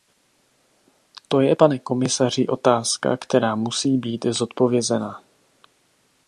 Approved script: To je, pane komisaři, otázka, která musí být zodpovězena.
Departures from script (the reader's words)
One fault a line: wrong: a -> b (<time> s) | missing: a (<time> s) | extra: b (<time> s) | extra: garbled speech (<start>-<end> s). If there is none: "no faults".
no faults